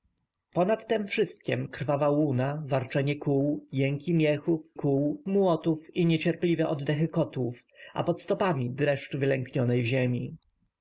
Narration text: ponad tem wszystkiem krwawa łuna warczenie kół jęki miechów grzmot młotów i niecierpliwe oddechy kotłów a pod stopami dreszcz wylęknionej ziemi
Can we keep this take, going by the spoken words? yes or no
no